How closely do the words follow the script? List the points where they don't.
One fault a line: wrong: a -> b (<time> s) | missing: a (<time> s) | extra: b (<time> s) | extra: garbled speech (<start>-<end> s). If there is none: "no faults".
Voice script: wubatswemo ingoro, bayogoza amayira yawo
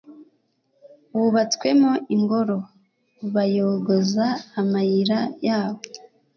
no faults